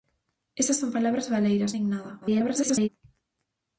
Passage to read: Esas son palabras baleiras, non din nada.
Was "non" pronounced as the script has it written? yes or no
no